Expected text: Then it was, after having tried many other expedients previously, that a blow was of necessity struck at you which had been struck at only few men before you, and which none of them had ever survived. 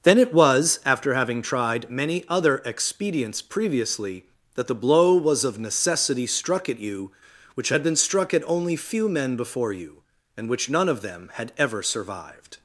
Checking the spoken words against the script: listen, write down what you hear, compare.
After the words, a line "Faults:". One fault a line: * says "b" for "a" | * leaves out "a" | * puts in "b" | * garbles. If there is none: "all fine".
Then it was, after having tried many other expedients previously, that the blow was of necessity struck at you which had been struck at only few men before you, and which none of them had ever survived.
Faults:
* says "the" for "a"